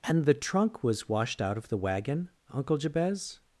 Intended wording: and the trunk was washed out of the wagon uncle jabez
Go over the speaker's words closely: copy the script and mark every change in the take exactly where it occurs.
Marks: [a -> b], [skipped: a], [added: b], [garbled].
and the trunk was washed out of the wagon uncle jabez